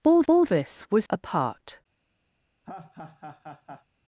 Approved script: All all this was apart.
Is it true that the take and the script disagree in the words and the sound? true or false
true